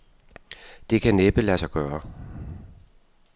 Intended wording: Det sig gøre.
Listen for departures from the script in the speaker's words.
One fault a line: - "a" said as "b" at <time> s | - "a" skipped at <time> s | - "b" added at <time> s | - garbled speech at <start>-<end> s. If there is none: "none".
- "kan næppe lade" added at 1.0 s